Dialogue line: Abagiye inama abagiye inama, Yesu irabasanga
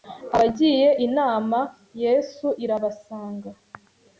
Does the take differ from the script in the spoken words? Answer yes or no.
yes